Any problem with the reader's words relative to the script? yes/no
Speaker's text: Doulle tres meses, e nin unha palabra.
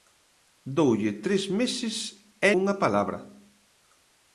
yes